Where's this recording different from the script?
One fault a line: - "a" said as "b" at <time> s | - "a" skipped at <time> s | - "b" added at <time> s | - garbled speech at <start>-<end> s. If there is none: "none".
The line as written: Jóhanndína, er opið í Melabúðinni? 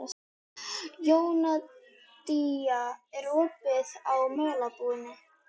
none